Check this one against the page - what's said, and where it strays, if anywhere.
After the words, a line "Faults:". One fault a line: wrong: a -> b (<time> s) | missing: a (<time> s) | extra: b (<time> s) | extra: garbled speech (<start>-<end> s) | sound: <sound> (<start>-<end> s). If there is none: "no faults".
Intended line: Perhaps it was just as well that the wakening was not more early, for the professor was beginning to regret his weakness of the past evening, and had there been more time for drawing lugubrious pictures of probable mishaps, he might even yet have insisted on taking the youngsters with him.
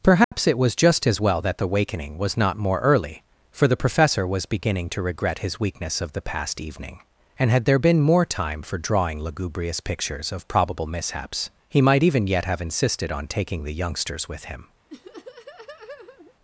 Perhaps it was just as well that the wakening was not more early, for the professor was beginning to regret his weakness of the past evening, and had there been more time for drawing lugubrious pictures of probable mishaps, he might even yet have insisted on taking the youngsters with him.
Faults:
sound: dropout (0.2-0.3 s)
sound: laugh (14.9-16.3 s)